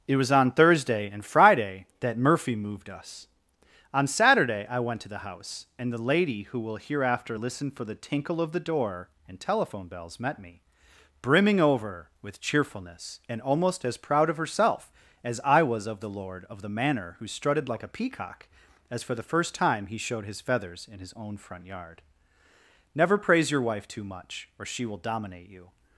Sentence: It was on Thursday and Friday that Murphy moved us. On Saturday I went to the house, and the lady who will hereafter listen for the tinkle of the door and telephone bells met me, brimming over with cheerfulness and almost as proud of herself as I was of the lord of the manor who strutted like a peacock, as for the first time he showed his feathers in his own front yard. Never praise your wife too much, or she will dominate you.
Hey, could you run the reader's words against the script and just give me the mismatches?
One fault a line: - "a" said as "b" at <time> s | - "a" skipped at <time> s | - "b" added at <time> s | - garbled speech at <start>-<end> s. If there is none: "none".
none